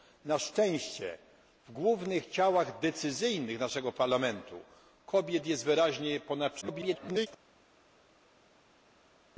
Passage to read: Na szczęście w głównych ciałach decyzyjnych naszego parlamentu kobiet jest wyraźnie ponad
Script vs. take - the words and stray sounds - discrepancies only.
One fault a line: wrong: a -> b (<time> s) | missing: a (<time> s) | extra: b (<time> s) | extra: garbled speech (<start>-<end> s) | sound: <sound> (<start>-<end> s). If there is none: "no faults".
extra: garbled speech (6.6-7.3 s)